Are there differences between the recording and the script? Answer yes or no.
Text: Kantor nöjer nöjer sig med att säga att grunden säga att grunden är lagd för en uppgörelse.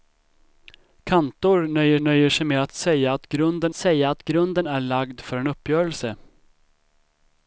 no